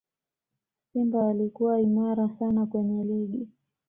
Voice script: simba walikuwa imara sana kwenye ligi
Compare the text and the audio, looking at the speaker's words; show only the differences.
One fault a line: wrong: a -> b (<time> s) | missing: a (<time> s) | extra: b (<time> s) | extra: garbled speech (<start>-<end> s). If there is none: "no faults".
no faults